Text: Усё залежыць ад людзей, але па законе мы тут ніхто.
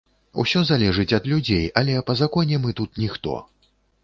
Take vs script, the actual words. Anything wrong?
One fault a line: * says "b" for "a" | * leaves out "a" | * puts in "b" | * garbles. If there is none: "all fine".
all fine